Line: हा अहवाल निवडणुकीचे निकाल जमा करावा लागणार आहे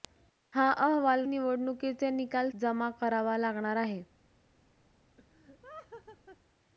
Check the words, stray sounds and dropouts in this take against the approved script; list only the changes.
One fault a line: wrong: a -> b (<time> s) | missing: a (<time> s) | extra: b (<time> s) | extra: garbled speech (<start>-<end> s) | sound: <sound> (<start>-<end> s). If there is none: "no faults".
sound: laugh (5.2-6.4 s)